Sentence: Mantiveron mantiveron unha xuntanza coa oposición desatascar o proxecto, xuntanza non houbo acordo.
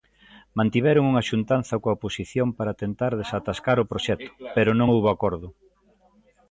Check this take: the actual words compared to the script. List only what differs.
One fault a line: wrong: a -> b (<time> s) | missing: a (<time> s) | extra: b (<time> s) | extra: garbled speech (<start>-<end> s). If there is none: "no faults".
missing: mantiveron (1.0 s)
extra: para tentar (2.6 s)
wrong: xuntanza -> pero (4.5 s)